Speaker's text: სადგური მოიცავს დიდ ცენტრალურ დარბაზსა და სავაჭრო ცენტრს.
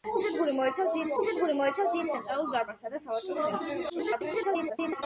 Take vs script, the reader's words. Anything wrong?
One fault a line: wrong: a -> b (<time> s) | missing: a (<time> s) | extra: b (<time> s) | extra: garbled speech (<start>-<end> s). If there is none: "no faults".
extra: სადგური მოიცავს დიდ (1.2 s)
extra: garbled speech (3.9-5.0 s)